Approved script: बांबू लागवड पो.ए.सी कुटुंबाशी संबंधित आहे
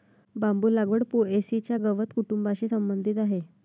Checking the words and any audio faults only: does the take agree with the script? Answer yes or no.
no